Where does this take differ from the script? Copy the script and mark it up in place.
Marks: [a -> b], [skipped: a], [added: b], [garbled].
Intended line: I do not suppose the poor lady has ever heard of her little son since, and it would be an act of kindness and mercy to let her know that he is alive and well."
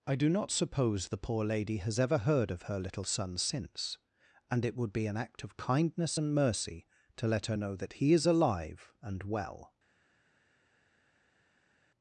I do not suppose the poor lady has ever heard of her little son since, and it would be an act of kindness and mercy to let her know that he is alive and well."